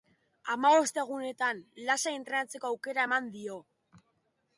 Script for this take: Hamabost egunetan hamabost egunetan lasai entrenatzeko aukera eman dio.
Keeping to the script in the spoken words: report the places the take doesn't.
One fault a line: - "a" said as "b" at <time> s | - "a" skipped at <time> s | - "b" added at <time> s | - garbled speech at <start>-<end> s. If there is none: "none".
- "hamabost egunetan" skipped at 1.6 s